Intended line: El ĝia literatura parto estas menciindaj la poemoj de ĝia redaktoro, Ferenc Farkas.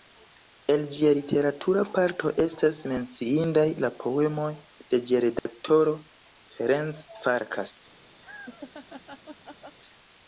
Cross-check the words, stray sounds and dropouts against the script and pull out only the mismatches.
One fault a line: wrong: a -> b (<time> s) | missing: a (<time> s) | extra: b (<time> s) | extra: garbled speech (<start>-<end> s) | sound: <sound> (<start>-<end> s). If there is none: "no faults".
sound: dropout (5.4-5.5 s)
sound: laugh (8.2-9.8 s)